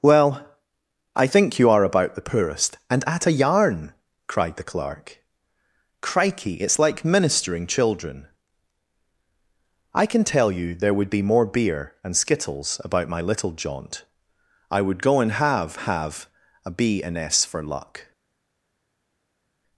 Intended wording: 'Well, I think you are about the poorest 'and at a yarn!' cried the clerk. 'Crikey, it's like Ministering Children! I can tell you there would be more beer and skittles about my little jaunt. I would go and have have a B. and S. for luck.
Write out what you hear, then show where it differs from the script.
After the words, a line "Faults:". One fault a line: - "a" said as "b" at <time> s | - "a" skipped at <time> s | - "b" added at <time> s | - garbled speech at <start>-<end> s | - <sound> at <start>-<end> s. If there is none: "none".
'Well, I think you are about the poorest 'and at a yarn!' cried the clerk. 'Crikey, it's like Ministering Children! I can tell you there would be more beer and skittles about my little jaunt. I would go and have have a B. and S. for luck.
Faults:
none